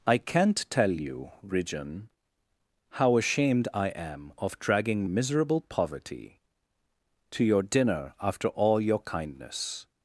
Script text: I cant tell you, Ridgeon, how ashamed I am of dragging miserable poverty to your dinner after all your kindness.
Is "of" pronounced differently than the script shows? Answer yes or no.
no